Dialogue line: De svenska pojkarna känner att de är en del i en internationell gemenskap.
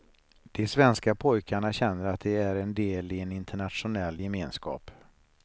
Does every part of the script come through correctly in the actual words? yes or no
yes